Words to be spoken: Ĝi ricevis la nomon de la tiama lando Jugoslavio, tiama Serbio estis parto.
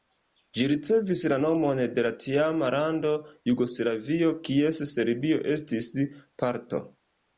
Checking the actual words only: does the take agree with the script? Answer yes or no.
no